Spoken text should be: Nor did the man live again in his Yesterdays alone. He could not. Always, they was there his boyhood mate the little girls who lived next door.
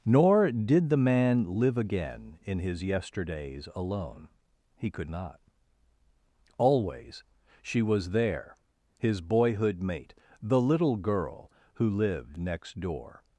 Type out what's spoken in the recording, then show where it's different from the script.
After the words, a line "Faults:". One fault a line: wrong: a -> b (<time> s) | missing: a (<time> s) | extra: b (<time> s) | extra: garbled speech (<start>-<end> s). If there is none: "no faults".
Nor did the man live again in his Yesterdays alone. He could not. Always, she was there his boyhood mate the little girl who lived next door.
Faults:
wrong: they -> she (7.6 s)
wrong: girls -> girl (11.0 s)